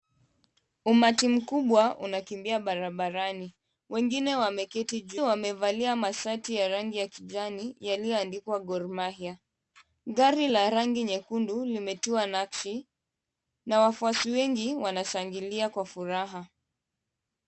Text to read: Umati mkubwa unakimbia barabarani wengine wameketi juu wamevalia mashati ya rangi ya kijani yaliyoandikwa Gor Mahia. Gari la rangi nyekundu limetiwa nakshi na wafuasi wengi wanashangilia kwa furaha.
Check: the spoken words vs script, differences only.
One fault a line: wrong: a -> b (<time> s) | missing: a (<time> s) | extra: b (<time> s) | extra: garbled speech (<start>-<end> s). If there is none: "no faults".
no faults